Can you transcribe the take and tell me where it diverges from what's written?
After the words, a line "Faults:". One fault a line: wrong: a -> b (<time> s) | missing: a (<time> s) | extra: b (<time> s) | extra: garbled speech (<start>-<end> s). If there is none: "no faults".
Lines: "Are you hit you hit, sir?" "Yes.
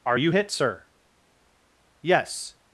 "Are you hit, sir?" "Yes.
Faults:
missing: you hit (0.5 s)